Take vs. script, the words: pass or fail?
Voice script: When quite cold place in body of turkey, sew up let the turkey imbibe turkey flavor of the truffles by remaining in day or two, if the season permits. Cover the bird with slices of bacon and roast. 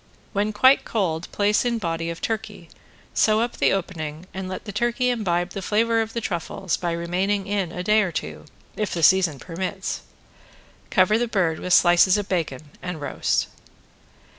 fail